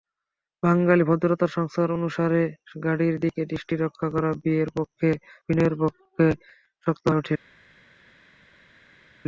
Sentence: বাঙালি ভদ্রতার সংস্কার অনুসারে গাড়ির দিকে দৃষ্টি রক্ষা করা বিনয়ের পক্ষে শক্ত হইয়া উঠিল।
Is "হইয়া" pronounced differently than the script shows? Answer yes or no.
yes